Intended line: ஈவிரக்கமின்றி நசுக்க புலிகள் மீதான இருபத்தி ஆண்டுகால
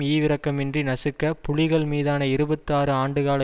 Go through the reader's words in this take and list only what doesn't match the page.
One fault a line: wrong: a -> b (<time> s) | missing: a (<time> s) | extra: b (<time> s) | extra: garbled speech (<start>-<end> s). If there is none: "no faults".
extra: ஆறு (2.7 s)